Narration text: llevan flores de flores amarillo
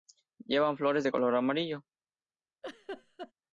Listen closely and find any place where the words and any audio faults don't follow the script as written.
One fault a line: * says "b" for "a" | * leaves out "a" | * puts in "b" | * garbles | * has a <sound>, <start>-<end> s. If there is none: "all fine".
* says "color" for "flores"
* has a laugh, 2.6-3.3 s